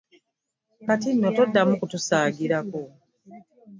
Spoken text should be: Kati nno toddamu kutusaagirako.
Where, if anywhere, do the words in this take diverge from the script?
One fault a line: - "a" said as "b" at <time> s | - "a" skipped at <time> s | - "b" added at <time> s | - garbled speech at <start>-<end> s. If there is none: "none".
none